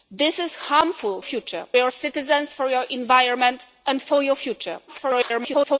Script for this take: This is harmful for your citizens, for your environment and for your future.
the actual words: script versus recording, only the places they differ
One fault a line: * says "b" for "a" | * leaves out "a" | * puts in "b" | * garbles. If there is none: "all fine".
* says "future" for "for"
* garbles